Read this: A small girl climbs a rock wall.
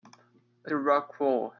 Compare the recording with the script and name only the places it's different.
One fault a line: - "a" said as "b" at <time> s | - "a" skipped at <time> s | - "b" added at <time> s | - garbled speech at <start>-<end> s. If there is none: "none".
- "small girl climbs" skipped at 0.7 s